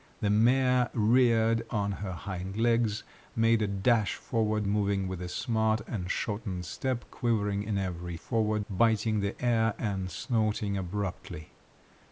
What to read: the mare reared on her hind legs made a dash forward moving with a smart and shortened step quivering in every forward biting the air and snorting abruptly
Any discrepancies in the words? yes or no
no